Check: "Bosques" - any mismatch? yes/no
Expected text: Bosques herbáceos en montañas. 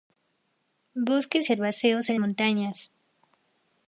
no